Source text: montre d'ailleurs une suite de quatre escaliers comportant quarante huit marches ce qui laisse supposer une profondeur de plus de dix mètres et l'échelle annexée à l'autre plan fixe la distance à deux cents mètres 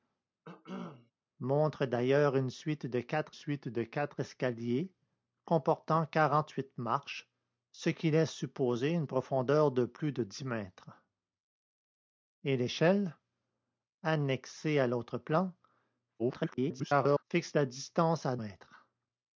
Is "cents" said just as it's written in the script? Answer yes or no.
no